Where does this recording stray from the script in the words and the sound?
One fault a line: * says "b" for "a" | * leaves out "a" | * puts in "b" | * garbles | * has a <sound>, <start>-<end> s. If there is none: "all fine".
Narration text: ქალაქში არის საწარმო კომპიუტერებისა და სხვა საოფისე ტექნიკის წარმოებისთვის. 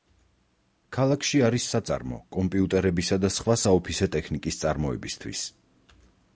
all fine